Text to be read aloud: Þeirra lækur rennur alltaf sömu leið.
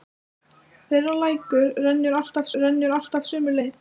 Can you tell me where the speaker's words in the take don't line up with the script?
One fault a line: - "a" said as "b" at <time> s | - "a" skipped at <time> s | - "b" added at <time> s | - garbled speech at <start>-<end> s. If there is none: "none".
- "rennur alltaf" added at 2.6 s